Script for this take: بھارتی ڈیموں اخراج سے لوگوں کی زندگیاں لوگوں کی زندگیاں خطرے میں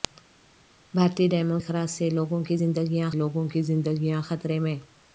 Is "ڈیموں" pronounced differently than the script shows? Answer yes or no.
no